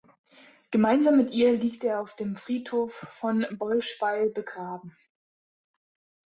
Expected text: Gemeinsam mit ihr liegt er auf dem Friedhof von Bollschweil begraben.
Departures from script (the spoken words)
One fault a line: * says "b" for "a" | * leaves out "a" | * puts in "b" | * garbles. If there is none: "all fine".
all fine